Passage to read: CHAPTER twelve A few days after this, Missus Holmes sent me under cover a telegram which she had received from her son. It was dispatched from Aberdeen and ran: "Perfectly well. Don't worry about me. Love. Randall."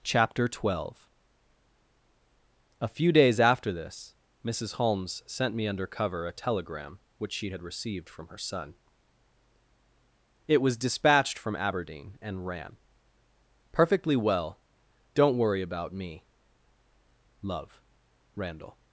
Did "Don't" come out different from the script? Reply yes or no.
no